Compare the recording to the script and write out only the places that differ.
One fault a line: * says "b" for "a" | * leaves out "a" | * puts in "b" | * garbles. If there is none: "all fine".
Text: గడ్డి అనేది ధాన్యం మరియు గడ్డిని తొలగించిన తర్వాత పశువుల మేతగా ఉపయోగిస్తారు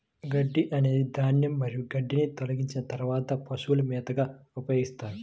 all fine